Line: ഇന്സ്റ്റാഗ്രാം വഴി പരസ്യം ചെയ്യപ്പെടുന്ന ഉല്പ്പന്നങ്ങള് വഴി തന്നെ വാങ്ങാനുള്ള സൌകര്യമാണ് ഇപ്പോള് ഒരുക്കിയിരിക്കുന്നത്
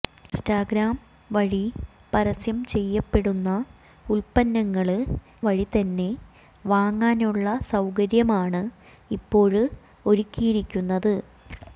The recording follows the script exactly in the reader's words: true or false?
true